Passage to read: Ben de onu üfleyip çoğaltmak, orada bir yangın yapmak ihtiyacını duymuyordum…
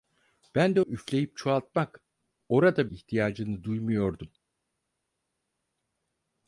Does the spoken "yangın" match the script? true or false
false